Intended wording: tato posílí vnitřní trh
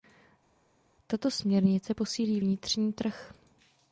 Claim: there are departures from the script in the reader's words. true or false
true